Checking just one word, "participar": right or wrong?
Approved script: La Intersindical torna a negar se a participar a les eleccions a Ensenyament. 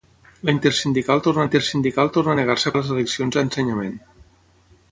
wrong